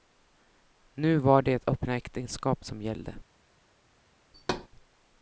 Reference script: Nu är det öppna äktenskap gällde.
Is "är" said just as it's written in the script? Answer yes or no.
no